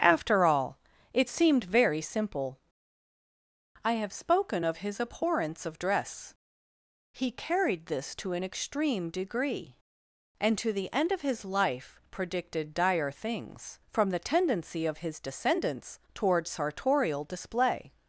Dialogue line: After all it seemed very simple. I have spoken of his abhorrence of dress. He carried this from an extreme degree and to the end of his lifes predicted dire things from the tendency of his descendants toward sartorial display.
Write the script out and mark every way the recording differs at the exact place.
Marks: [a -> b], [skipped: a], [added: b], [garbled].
After all it seemed very simple. I have spoken of his abhorrence of dress. He carried this [from -> to] an extreme degree and to the end of his [lifes -> life] predicted dire things from the tendency of his descendants toward sartorial display.